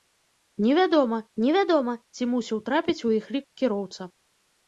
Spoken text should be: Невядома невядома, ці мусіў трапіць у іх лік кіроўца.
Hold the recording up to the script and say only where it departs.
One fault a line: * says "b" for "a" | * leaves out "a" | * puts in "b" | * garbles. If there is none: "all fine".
all fine